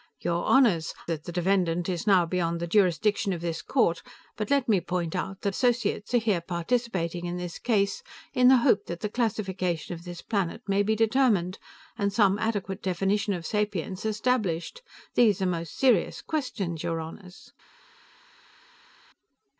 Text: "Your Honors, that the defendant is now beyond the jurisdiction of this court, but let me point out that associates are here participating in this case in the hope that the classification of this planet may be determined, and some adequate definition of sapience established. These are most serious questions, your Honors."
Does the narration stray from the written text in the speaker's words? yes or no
no